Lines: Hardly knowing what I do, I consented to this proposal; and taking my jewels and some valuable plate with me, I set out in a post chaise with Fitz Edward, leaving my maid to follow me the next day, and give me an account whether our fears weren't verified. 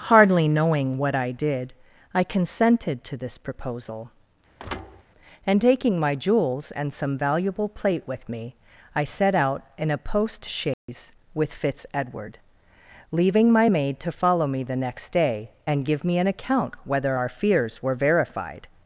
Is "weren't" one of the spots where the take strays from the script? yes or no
yes